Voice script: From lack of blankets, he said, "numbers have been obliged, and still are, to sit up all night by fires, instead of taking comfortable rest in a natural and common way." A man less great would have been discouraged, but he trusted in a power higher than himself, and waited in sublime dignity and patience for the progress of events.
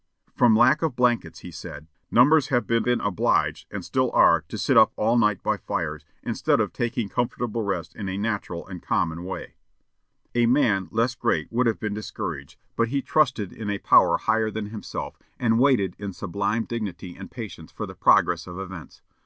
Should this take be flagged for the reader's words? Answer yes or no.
yes